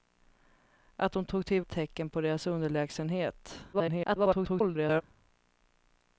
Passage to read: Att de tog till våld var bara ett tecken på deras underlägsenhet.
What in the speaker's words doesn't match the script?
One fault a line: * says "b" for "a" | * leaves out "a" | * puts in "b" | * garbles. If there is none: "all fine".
* leaves out "våld var bara"
* garbles